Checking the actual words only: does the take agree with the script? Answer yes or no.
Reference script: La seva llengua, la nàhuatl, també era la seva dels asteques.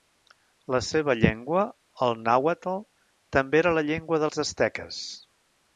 no